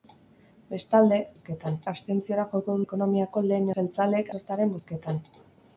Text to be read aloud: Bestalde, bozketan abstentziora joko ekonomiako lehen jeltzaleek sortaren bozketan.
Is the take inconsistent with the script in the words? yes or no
no